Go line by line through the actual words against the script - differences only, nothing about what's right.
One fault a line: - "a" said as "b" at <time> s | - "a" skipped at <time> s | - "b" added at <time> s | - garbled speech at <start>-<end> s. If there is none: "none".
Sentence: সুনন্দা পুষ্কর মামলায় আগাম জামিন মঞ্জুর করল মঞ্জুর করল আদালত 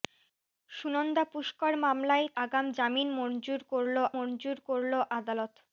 none